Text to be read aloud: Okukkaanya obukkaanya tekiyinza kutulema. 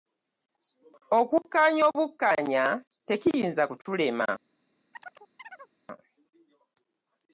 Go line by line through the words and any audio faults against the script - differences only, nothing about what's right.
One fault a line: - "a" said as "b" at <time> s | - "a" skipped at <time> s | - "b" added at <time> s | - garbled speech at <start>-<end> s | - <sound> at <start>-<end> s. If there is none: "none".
- chirp at 4.9-5.7 s